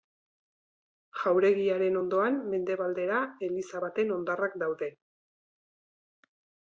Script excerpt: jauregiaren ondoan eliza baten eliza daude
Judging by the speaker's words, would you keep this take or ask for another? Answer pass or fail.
fail